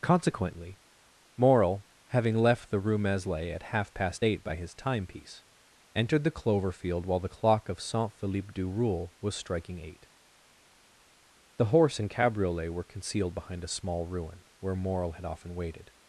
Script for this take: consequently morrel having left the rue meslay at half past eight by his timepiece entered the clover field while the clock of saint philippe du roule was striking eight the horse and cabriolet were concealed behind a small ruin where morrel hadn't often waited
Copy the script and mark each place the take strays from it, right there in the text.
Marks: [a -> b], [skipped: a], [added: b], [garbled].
consequently morrel having left the rue meslay at half past eight by his timepiece entered the clover field while the clock of saint philippe du roule was striking eight the horse and cabriolet were concealed behind a small ruin where morrel [hadn't -> had] often waited